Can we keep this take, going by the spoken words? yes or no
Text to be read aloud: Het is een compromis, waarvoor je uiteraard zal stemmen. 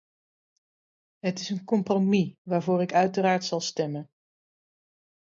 no